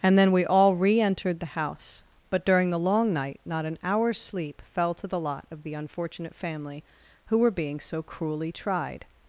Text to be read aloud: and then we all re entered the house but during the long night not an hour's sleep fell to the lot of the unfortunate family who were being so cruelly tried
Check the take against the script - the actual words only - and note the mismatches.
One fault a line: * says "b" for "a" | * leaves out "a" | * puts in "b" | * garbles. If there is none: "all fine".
all fine